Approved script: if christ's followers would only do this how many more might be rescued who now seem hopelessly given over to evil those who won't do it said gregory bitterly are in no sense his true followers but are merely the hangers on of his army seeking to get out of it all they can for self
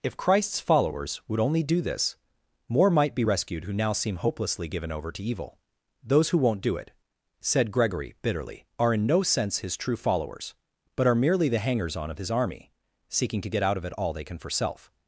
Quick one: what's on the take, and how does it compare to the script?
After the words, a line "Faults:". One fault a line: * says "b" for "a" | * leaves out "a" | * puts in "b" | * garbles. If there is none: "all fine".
if christ's followers would only do this more might be rescued who now seem hopelessly given over to evil those who won't do it said gregory bitterly are in no sense his true followers but are merely the hangers on of his army seeking to get out of it all they can for self
Faults:
* leaves out "how many"